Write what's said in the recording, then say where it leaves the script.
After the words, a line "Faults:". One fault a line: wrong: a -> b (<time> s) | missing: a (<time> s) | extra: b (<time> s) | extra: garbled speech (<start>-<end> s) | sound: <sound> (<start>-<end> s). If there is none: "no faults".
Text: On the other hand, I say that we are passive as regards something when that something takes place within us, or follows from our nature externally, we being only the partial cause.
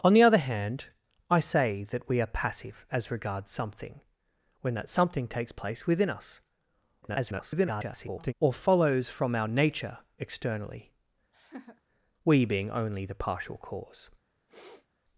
On the other hand, I say that we are passive as regards something when that something takes place within us, [garbled] or follows from our nature externally, we being only the partial cause.
Faults:
extra: garbled speech (7.0-8.3 s)
sound: laugh (11.3-11.8 s)
sound: sniff (14.5-14.9 s)